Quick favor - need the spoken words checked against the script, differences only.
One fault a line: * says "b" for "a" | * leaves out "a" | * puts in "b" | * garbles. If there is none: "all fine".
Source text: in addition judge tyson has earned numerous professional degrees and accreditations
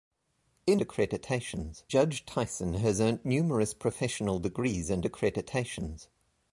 * says "accreditations" for "addition"